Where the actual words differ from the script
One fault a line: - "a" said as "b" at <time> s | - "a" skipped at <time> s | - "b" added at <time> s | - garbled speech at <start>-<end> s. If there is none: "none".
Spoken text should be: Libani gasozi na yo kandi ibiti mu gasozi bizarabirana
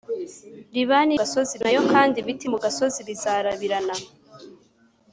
none